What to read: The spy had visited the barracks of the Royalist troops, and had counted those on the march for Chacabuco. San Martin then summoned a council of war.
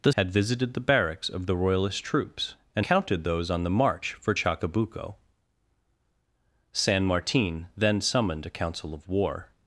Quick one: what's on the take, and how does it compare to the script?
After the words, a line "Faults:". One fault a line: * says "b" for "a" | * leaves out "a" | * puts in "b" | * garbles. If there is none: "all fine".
The had visited the barracks of the Royalist troops, and counted those on the march for Chacabuco. San Martin then summoned a council of war.
Faults:
* leaves out "spy"
* leaves out "had"